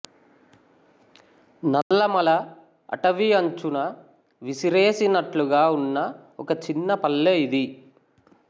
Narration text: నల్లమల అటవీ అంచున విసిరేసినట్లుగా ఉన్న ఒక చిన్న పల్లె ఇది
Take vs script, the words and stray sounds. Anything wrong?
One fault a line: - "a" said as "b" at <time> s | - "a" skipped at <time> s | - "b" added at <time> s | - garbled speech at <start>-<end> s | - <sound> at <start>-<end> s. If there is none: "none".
- dropout at 1.8-1.9 s